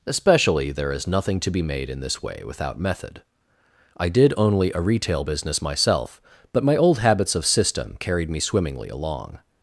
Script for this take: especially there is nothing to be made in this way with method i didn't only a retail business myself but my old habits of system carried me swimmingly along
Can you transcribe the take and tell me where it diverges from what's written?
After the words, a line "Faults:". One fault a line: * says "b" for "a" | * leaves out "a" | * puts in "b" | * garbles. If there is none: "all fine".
especially there is nothing to be made in this way without method i did only a retail business myself but my old habits of system carried me swimmingly along
Faults:
* says "without" for "with"
* says "did" for "didn't"